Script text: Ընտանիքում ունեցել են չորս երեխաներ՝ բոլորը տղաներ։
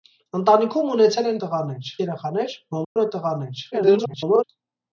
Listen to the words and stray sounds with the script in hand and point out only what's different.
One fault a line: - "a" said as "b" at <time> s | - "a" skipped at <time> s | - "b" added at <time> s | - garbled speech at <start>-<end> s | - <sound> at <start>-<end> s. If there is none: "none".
- "չորս" said as "տղաներ" at 1.4 s
- dropout at 2.8-3.0 s
- garbled speech at 3.7-4.4 s